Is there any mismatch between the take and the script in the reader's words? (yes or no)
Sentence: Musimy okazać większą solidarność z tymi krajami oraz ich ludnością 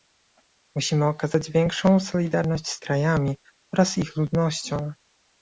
yes